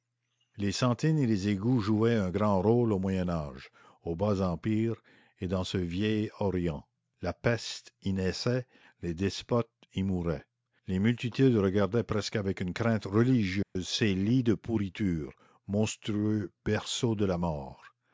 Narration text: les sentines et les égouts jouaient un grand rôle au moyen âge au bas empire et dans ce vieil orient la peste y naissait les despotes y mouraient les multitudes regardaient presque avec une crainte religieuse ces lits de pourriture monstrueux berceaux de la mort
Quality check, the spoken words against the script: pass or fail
pass